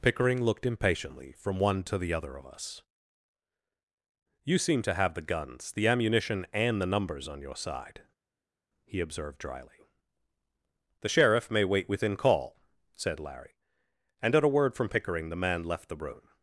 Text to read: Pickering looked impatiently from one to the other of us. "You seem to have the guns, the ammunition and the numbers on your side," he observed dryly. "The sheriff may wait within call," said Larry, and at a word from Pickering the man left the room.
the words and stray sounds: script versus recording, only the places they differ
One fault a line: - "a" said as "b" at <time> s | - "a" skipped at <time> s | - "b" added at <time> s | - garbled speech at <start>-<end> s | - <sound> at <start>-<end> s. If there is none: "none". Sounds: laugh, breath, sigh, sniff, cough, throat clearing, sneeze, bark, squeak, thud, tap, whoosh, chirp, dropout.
none